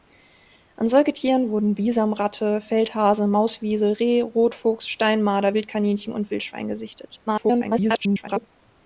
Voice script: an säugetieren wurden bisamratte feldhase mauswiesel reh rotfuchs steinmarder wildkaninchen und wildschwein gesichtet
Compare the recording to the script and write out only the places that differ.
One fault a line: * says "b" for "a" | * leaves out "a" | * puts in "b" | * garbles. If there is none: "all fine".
* garbles